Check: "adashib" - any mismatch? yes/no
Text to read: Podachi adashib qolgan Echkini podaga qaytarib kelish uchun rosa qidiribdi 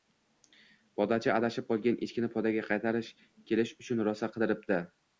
no